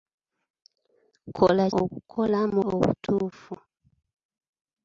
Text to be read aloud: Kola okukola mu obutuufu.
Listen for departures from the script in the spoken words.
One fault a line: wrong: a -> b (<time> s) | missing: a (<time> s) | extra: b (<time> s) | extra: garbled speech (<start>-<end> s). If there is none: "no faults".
no faults